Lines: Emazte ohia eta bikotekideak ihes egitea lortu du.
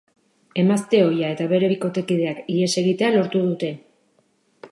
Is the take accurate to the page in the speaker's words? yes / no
no